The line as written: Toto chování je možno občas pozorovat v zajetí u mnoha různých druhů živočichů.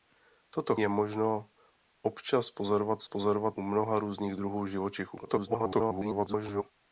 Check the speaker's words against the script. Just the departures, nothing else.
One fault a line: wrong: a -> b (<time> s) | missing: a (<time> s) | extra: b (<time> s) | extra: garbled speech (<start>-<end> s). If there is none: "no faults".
missing: chování (0.8 s)
wrong: zajetí -> pozorovat (3.0 s)
extra: garbled speech (5.2-6.6 s)